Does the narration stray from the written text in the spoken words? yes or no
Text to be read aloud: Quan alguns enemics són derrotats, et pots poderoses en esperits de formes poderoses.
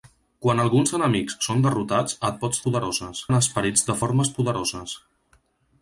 no